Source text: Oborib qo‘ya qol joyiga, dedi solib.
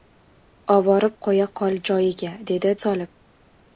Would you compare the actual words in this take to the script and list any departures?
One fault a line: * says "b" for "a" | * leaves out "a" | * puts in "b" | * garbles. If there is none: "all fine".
all fine